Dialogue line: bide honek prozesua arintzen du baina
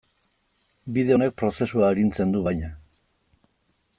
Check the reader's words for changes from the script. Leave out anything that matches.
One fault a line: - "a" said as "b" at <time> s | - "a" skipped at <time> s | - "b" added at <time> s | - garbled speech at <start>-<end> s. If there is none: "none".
none